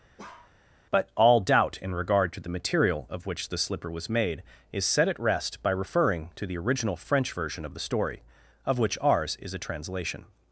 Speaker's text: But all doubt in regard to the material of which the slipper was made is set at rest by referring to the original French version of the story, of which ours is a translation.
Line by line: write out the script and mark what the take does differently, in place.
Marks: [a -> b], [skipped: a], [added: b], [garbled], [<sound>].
[bark] But all doubt in regard to the material of which the slipper was made is set at rest by referring to the original French version of the story, of which ours is a translation.